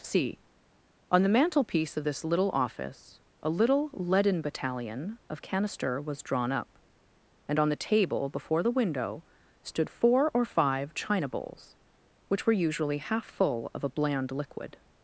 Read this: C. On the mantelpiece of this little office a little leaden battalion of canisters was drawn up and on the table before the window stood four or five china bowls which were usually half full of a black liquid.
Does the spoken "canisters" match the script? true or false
false